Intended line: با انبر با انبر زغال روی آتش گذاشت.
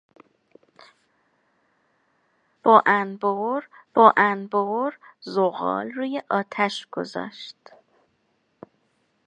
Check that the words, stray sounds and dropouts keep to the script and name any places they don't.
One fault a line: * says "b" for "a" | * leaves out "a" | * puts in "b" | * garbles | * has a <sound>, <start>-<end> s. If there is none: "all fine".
all fine